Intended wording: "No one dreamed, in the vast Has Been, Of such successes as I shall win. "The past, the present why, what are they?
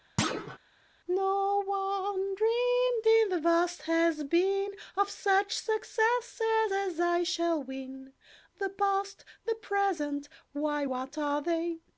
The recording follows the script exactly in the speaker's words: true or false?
true